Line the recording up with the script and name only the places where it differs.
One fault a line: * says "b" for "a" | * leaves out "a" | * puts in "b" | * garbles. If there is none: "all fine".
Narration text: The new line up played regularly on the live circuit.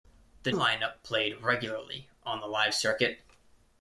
* leaves out "new"